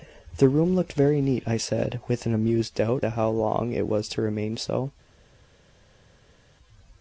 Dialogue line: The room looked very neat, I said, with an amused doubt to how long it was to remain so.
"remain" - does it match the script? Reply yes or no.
yes